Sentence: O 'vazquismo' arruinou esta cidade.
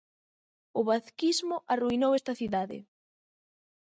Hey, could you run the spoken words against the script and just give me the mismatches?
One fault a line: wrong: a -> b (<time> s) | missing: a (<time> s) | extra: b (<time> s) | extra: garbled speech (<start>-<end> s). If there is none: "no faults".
no faults